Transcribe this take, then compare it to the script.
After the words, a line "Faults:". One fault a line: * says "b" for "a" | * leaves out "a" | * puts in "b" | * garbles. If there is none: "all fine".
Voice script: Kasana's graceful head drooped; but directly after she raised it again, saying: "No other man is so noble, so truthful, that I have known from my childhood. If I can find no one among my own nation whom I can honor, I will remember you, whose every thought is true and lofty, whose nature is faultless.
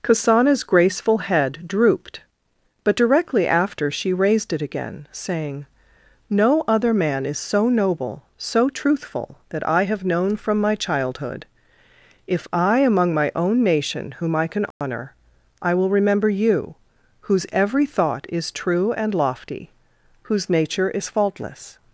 Kasana's graceful head drooped; but directly after she raised it again, saying: "No other man is so noble, so truthful, that I have known from my childhood. If I among my own nation whom I can honor, I will remember you, whose every thought is true and lofty, whose nature is faultless.
Faults:
* leaves out "can find no one"